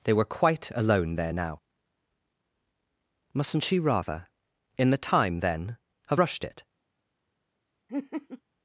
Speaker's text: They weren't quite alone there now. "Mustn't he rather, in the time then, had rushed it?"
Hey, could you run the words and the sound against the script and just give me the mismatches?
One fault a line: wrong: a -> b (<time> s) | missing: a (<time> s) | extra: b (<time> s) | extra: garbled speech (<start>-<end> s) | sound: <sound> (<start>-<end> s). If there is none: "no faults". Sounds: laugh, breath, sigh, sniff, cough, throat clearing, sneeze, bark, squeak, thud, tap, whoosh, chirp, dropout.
wrong: weren't -> were (0.1 s)
wrong: he -> she (3.6 s)
wrong: had -> have (6.1 s)
sound: laugh (7.9-8.4 s)